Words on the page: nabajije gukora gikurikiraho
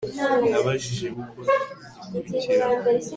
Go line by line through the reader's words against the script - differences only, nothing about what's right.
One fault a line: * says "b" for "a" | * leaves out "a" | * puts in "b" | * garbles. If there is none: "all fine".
all fine